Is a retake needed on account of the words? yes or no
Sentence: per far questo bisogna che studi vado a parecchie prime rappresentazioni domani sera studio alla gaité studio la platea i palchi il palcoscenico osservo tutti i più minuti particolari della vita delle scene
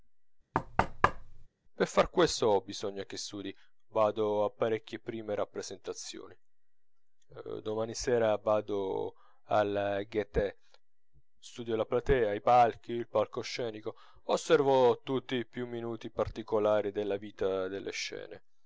yes